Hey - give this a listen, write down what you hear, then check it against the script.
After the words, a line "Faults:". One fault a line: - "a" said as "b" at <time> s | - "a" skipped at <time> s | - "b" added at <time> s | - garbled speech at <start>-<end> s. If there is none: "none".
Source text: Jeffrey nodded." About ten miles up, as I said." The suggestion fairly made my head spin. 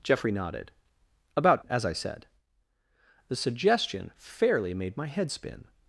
Jeffrey nodded." About as I said." The suggestion fairly made my head spin.
Faults:
- "ten miles up" skipped at 1.6 s